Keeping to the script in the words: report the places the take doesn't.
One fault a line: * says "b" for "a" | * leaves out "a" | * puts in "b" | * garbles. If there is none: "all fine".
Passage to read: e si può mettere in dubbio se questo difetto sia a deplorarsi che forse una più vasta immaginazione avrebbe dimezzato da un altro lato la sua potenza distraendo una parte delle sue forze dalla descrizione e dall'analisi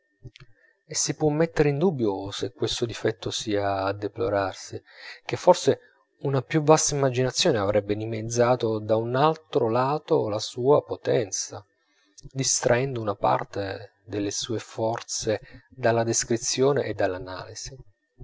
all fine